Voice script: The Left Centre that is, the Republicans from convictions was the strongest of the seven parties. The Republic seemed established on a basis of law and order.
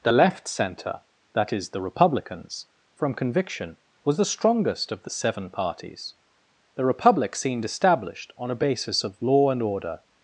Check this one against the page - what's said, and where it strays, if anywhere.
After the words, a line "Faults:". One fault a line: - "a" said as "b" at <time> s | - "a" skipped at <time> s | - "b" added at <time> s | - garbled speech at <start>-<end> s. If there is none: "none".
The Left Centre that is, the Republicans from conviction was the strongest of the seven parties. The Republic seemed established on a basis of law and order.
Faults:
- "convictions" said as "conviction" at 3.1 s